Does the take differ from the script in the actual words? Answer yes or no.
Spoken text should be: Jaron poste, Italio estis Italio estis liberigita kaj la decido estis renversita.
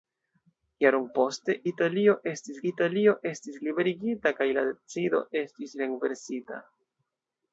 no